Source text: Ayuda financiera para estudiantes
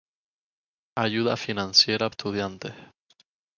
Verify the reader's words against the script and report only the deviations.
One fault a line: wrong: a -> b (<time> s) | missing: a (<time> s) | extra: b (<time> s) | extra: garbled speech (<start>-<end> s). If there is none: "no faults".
missing: para (2.1 s)